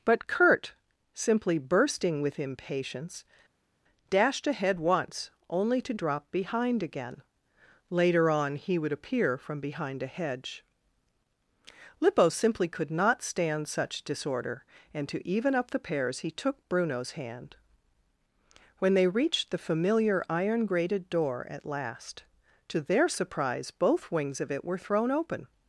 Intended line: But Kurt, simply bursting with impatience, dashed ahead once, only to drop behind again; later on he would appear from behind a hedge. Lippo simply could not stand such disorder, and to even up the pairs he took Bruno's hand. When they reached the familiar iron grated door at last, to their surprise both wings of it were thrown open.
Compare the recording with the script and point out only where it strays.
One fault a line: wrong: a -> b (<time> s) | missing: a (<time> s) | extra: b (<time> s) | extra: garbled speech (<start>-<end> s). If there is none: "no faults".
no faults